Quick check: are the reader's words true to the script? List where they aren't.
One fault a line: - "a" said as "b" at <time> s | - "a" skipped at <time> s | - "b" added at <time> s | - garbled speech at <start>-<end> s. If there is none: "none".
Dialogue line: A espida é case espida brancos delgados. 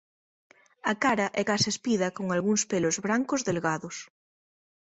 - "espida" said as "cara" at 1.0 s
- "con algúns pelos" added at 2.2 s